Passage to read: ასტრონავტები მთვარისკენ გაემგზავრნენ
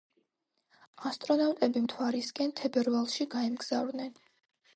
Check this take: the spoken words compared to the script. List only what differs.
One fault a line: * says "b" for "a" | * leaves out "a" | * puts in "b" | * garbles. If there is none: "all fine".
* puts in "თებერვალში"